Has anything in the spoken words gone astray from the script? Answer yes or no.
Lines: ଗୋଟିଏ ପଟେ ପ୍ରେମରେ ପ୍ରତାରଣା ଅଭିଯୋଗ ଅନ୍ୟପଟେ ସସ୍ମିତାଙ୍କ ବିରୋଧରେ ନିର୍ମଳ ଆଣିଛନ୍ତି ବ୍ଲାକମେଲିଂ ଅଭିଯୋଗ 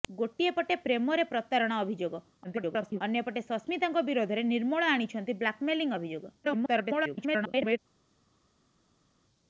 yes